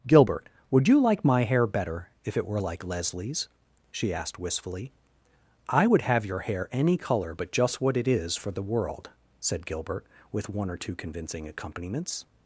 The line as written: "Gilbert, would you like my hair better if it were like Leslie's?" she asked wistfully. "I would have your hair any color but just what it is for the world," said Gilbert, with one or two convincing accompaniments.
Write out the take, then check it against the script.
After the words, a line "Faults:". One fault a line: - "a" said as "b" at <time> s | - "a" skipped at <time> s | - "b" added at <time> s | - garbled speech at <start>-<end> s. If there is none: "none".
"Gilbert, would you like my hair better if it were like Leslie's?" she asked wistfully. "I would have your hair any color but just what it is for the world," said Gilbert, with one or two convincing accompaniments.
Faults:
none